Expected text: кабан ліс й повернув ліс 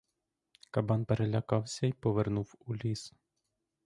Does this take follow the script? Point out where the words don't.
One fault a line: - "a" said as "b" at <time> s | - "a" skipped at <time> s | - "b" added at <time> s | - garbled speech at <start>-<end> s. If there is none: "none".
- "ліс" said as "перелякався" at 1.0 s
- "у" added at 2.6 s